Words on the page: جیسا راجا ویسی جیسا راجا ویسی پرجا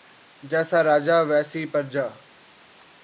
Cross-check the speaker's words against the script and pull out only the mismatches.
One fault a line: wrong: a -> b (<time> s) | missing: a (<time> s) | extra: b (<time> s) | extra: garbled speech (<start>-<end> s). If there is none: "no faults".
missing: جیسا راجا ویسی (1.6 s)